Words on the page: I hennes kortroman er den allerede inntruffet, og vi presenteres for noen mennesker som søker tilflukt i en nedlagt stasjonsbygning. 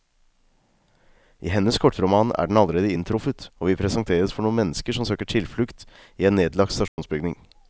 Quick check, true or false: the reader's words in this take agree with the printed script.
true